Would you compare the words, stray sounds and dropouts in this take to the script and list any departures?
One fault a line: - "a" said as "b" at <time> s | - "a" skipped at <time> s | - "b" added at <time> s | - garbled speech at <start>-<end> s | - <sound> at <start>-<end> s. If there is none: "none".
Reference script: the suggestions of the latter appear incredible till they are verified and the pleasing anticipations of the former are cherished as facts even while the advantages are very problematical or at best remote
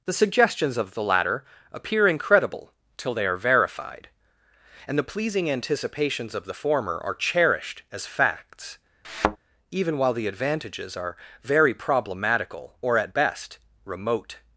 - thud at 9.0-9.4 s